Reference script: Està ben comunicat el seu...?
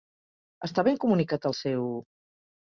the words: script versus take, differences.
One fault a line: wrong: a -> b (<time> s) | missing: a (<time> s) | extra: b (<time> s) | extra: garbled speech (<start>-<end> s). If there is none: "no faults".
no faults